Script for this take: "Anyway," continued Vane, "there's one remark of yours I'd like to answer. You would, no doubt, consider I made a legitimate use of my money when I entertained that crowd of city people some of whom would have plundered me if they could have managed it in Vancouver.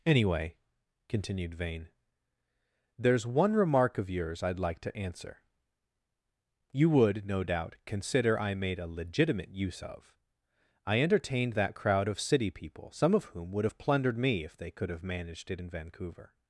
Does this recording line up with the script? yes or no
no